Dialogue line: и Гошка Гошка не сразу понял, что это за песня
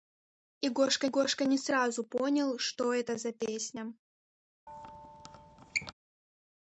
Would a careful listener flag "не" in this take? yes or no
no